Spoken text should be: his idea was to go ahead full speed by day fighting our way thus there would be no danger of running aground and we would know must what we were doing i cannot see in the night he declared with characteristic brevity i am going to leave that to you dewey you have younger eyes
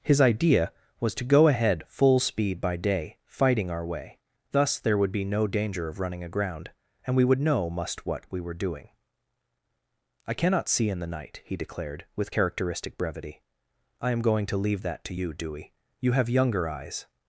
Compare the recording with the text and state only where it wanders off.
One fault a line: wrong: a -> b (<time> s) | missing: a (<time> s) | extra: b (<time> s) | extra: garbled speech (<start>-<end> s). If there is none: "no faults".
no faults